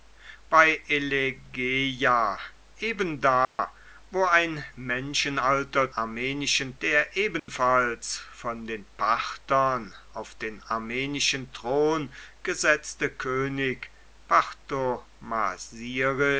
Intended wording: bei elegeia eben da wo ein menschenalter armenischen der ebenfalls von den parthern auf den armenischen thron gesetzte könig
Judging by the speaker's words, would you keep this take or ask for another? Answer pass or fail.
pass